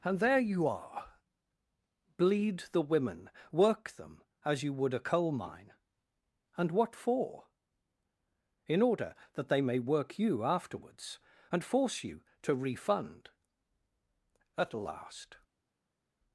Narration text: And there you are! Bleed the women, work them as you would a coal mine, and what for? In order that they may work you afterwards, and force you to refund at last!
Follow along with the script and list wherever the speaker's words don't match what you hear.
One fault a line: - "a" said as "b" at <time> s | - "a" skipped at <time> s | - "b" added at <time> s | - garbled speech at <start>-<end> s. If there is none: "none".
none